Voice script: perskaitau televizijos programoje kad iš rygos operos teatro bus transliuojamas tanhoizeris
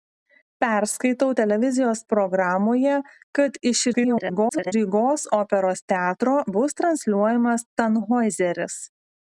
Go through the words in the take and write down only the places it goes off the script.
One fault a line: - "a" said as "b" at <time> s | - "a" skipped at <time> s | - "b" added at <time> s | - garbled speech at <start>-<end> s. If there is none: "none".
- garbled speech at 3.9-4.7 s